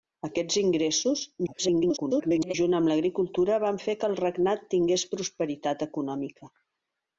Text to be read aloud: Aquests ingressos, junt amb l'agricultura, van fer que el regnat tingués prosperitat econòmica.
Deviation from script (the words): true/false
true